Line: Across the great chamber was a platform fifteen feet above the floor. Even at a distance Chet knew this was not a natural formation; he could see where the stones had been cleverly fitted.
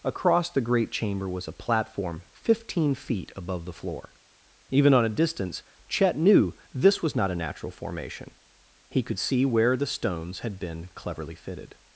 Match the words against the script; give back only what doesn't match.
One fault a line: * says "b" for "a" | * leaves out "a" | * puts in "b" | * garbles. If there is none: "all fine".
* says "on" for "at"